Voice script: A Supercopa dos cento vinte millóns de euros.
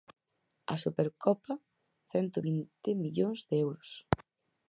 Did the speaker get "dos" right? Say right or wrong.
wrong